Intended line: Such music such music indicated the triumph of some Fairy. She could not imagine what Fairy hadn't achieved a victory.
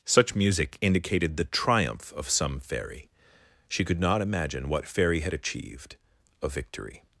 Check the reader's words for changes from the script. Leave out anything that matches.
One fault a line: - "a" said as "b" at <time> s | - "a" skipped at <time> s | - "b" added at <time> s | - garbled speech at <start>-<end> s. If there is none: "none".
- "such music" skipped at 0.8 s
- "hadn't" said as "had" at 5.2 s